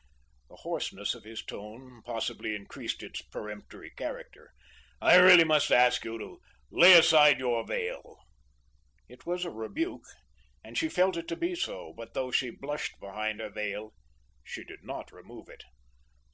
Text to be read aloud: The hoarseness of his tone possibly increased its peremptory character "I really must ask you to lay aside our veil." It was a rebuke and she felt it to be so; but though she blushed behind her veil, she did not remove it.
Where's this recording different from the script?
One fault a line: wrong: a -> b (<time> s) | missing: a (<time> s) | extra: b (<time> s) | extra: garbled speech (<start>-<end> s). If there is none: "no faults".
wrong: our -> your (7.4 s)